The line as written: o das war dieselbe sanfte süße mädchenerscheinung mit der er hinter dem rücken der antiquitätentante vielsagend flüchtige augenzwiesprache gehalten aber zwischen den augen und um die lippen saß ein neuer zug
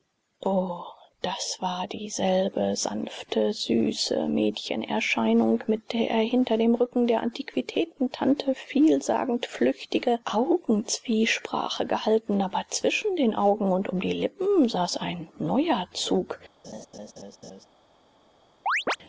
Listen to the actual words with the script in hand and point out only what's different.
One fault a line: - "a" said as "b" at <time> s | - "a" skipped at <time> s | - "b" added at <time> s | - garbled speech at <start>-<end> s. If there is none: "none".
none